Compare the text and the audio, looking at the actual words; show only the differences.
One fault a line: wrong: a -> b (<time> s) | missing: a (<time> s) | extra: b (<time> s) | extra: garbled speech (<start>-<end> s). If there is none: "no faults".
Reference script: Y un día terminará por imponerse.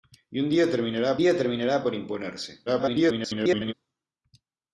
extra: día terminará (1.2 s)
extra: garbled speech (2.7-3.7 s)